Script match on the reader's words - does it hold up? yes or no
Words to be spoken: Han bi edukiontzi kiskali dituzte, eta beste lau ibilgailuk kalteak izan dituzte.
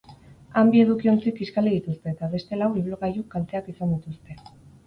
yes